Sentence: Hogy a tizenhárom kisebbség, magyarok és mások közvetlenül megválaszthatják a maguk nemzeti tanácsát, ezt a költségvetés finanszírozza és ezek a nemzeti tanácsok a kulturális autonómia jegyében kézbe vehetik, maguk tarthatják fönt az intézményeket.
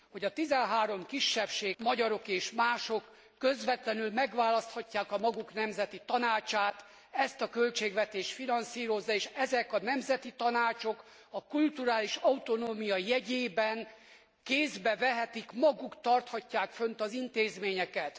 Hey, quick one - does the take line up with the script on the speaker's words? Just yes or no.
yes